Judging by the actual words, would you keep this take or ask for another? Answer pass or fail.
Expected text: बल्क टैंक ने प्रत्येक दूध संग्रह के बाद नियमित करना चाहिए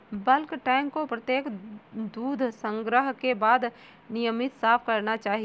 fail